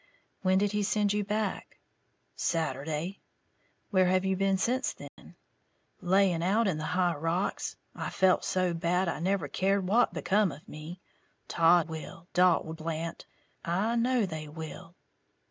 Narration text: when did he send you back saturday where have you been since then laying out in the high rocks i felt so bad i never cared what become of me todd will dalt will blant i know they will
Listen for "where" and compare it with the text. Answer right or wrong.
right